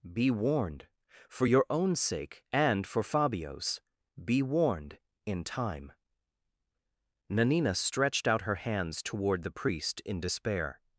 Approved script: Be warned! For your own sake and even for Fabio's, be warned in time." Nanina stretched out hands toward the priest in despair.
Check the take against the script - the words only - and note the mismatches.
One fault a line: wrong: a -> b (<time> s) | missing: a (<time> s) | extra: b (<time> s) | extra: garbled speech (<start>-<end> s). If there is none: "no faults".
missing: even (2.9 s)
extra: her (8.4 s)